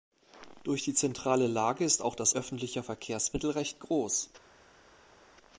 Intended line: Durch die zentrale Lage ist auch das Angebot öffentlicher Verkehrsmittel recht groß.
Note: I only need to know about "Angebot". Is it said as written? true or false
false